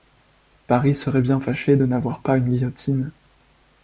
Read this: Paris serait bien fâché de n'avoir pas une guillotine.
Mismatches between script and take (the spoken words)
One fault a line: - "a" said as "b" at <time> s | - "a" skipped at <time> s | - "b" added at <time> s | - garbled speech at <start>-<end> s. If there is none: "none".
none